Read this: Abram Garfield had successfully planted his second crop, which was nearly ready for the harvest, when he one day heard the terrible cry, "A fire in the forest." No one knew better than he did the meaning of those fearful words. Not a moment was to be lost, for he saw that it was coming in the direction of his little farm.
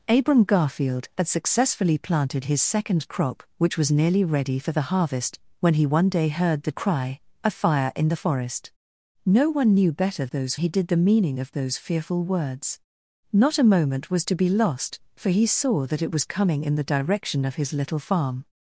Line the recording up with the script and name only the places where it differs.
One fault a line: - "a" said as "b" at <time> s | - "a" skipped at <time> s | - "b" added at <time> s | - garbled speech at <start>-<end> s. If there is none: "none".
- "terrible" skipped at 6.7 s
- "than" said as "those" at 10.3 s